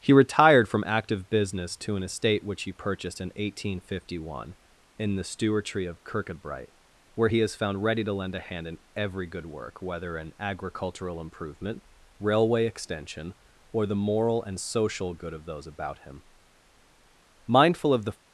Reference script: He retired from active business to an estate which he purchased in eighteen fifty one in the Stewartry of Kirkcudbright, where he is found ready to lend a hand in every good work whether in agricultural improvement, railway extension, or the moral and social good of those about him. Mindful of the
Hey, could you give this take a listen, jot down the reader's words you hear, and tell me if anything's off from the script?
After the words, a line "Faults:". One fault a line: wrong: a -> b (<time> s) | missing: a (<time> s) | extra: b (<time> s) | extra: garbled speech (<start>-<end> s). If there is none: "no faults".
He retired from active business to an estate which he purchased in eighteen fifty one in the Stewartry of Kirkcudbright, where he is found ready to lend a hand in every good work whether in agricultural improvement, railway extension, or the moral and social good of those about him. Mindful of the
Faults:
no faults